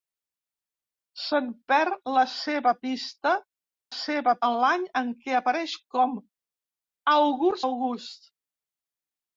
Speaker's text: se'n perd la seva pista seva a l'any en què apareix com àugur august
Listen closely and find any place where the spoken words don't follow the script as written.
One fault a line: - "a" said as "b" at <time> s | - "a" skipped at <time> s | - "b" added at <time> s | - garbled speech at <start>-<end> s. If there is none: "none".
none